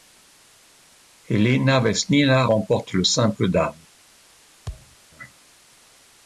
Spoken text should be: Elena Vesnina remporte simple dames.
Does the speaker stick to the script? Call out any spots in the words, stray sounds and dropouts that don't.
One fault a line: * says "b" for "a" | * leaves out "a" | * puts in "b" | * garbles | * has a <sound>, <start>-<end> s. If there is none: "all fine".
* puts in "le"
* has a thud, 4.7-5.0 s